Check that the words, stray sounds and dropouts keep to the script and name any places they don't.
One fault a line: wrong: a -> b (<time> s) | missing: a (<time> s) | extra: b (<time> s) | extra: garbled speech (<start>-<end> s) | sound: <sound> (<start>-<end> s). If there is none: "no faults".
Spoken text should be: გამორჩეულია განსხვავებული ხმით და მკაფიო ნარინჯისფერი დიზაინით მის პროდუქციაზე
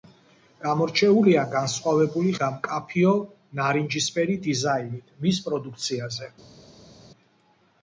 missing: ხმით (2.3 s)